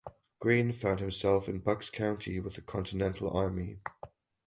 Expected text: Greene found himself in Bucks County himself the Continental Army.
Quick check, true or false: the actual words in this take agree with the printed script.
false